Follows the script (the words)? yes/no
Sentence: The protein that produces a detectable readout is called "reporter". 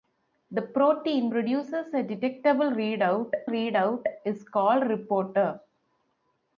no